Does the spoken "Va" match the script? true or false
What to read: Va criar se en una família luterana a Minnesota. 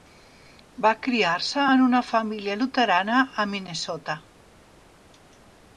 true